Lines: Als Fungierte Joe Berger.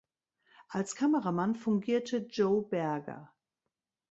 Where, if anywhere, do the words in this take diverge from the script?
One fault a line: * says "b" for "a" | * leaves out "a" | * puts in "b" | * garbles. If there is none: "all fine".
* puts in "Kameramann"